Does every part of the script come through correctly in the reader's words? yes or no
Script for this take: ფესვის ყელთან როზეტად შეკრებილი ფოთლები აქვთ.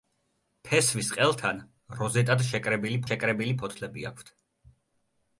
no